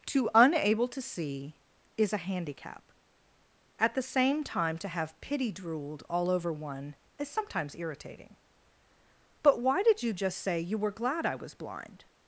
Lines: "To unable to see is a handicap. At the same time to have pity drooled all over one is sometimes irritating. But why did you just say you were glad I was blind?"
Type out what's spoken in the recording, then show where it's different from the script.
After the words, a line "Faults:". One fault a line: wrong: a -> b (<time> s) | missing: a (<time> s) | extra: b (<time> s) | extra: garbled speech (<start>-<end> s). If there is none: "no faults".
"To unable to see is a handicap. At the same time to have pity drooled all over one is sometimes irritating. But why did you just say you were glad I was blind?"
Faults:
no faults